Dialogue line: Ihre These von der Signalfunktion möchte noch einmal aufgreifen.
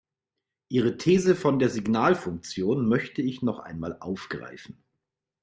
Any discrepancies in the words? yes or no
yes